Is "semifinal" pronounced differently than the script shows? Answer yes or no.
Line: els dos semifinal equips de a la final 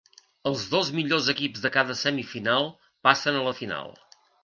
yes